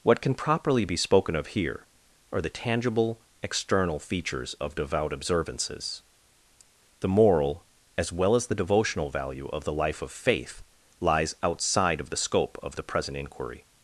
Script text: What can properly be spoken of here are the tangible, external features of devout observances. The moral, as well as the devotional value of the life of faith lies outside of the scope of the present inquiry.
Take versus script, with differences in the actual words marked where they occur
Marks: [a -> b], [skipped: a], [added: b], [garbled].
What can properly be spoken of here are the tangible, external features of devout observances. The moral, as well as the devotional value of the life of faith lies outside of the scope of the present inquiry.